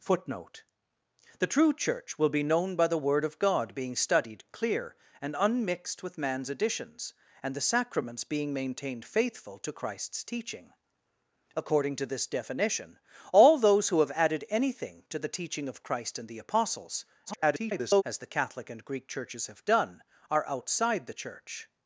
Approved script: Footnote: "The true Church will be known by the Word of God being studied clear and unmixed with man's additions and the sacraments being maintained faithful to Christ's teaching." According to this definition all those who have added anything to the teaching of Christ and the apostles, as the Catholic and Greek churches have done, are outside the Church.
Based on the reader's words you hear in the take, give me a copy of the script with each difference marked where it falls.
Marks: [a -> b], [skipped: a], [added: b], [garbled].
Footnote: "The true Church will be known by the Word of God being studied clear and unmixed with man's additions and the sacraments being maintained faithful to Christ's teaching." According to this definition all those who have added anything to the teaching of Christ and the apostles, [garbled] as the Catholic and Greek churches have done, are outside the Church.